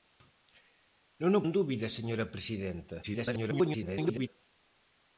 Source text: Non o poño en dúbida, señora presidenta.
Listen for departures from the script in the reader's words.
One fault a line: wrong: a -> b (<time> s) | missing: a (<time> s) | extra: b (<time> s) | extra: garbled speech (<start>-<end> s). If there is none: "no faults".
missing: poño (1.4 s)
extra: garbled speech (3.0-4.3 s)